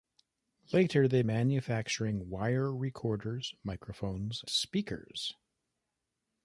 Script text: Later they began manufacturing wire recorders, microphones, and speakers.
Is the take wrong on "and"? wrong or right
wrong